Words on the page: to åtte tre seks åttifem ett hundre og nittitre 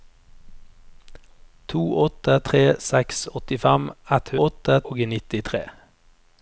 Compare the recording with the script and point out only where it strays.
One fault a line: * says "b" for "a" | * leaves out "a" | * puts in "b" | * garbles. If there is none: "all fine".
* says "åtte" for "hundre"